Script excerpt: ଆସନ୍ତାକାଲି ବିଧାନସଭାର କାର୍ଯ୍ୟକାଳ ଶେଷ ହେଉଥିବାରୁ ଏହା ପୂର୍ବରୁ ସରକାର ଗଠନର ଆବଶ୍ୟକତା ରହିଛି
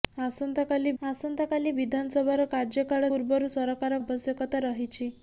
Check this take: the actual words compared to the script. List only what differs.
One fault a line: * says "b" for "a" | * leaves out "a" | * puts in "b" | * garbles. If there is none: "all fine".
* puts in "ଆସନ୍ତାକାଲି"
* leaves out "ଶେଷ ହେଉଥିବାରୁ ଏହା"
* leaves out "ଗଠନର"